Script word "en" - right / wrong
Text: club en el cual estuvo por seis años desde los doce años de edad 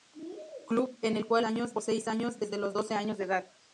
right